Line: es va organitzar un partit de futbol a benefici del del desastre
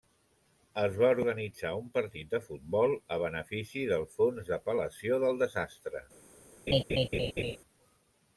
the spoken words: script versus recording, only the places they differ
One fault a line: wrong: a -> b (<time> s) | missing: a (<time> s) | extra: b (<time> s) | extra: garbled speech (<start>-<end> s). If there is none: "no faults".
extra: fons d'apel·lació (4.2 s)